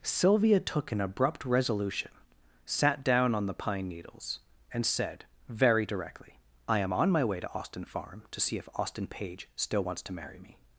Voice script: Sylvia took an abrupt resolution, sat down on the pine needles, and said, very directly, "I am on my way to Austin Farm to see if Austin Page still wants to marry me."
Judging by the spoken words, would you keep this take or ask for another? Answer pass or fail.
pass